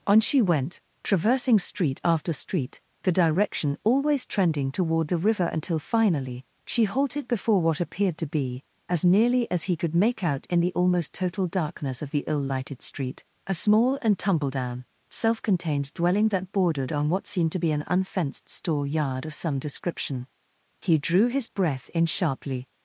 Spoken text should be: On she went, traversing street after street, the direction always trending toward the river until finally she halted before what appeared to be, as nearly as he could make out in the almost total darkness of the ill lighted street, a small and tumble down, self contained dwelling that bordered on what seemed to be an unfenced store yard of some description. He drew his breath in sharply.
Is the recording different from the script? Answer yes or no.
no